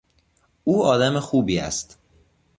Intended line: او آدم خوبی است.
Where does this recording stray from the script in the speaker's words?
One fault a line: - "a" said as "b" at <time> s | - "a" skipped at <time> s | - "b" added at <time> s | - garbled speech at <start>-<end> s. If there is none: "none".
none